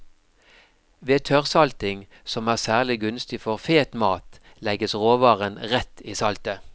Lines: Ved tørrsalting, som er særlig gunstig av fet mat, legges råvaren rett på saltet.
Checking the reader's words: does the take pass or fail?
fail